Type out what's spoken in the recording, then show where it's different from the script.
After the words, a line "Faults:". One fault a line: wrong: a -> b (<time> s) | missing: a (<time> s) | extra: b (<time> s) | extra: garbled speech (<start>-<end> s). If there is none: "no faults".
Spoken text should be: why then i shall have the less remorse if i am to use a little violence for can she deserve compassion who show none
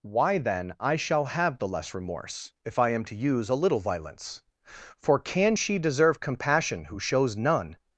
why then i shall have the less remorse if i am to use a little violence for can she deserve compassion who shows none
Faults:
wrong: show -> shows (7.0 s)